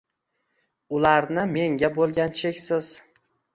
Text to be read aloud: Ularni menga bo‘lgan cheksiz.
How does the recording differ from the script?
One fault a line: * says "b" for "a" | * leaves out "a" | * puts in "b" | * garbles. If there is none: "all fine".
all fine